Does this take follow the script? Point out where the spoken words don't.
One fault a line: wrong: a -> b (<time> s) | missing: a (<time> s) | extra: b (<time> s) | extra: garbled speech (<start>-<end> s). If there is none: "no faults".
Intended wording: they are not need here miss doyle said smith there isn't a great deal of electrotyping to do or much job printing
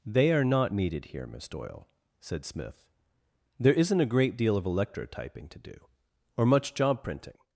wrong: need -> needed (0.7 s)